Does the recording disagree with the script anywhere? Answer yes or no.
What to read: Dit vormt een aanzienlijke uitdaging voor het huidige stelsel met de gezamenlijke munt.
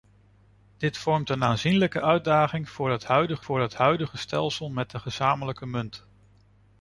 yes